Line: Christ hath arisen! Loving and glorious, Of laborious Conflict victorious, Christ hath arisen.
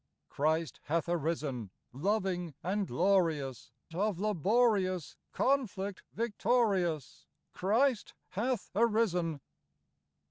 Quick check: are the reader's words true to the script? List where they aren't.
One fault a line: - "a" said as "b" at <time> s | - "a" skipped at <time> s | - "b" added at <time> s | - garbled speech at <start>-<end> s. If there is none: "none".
none